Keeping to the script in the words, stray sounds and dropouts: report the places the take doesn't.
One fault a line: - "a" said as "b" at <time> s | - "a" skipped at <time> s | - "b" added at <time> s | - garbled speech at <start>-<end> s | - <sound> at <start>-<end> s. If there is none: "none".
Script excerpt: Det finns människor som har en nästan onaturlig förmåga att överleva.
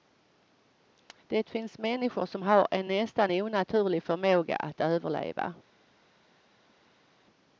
none